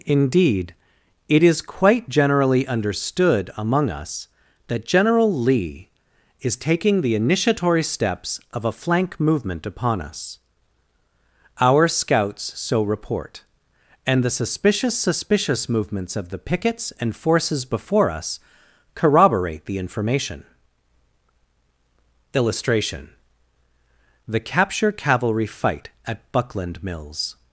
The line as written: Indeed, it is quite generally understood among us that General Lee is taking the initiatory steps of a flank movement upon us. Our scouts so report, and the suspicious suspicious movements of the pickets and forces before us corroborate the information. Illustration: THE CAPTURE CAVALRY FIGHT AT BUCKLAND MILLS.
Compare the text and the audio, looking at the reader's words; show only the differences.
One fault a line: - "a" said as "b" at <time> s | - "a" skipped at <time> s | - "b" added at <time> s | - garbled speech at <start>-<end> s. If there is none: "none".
none